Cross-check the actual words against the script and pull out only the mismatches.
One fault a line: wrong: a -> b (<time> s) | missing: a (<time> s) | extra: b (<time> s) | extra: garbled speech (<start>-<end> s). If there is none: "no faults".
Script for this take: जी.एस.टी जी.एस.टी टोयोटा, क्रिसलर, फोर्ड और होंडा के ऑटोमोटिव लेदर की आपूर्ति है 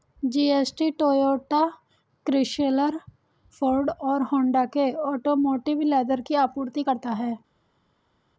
missing: जी.एस.टी (0.9 s)
extra: करता (6.8 s)